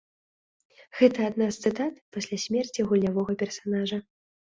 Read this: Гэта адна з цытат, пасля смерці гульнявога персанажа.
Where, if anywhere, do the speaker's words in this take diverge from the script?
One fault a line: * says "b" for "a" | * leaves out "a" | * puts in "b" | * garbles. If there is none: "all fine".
all fine